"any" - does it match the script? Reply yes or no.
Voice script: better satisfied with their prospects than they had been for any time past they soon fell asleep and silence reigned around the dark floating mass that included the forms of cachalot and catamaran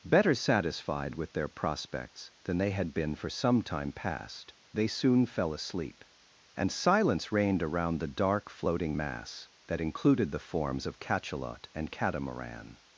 no